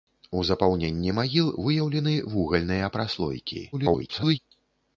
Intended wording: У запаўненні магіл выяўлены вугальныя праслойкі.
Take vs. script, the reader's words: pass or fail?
fail